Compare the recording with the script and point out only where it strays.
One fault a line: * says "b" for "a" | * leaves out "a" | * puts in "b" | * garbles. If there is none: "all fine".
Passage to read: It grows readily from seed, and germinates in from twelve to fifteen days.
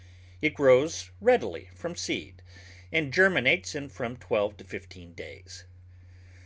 all fine